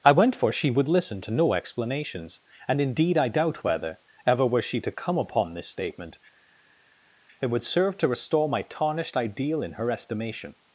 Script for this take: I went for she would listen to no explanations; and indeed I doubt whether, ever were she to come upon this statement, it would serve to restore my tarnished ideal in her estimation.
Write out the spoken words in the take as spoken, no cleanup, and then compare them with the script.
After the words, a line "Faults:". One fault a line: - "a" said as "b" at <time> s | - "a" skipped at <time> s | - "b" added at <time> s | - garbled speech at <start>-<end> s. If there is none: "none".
I went for she would listen to no explanations; and indeed I doubt whether, ever were she to come upon this statement, it would serve to restore my tarnished ideal in her estimation.
Faults:
none